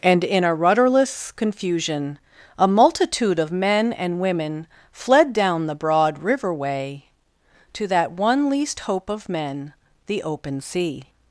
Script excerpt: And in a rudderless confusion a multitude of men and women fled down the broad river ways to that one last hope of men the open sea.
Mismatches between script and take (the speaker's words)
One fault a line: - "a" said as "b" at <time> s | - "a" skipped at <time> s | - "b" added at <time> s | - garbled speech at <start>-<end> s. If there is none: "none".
- "ways" said as "way" at 6.5 s
- "last" said as "least" at 8.5 s